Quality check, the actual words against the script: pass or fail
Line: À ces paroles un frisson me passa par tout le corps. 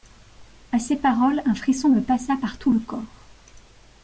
pass